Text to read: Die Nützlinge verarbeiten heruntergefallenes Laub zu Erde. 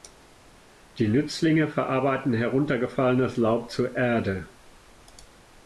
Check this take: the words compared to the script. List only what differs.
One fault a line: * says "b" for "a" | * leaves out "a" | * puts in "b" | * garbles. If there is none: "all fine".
all fine